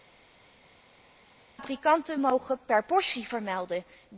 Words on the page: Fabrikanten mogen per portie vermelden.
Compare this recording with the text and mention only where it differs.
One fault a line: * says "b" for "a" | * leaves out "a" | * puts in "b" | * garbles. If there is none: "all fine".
all fine